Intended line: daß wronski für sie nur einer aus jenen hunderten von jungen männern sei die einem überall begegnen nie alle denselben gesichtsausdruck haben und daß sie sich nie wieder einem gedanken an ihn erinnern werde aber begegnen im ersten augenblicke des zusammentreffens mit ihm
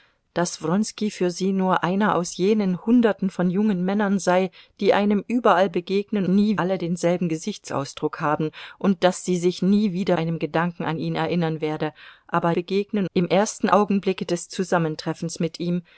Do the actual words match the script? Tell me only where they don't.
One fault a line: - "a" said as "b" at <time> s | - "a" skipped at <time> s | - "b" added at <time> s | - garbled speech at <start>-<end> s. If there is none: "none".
none